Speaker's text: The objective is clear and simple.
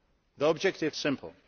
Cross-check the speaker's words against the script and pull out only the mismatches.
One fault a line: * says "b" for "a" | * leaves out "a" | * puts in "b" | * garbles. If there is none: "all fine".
* leaves out "is clear and"